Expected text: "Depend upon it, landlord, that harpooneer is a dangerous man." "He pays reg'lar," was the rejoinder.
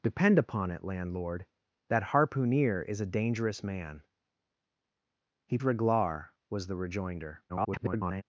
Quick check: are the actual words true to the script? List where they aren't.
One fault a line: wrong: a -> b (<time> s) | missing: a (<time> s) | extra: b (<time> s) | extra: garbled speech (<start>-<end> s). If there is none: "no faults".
missing: pays (5.6 s)
extra: garbled speech (7.5-8.2 s)